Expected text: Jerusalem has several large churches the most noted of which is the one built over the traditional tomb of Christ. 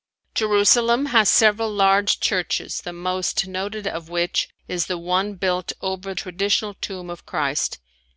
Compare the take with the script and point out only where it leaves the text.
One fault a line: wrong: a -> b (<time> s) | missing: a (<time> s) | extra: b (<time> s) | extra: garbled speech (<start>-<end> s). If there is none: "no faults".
missing: the (6.1 s)